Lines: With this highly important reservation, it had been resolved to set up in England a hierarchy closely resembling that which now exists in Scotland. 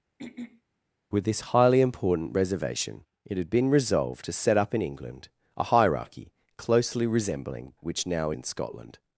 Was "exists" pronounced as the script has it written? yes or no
no